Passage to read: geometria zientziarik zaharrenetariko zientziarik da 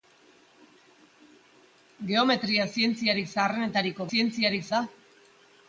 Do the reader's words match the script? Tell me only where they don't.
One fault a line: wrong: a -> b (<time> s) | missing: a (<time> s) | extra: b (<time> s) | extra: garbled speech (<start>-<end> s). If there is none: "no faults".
no faults